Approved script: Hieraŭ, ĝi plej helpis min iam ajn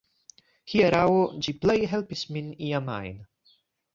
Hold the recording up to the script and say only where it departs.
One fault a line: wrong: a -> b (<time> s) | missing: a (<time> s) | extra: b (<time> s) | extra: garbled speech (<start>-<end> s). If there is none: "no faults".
no faults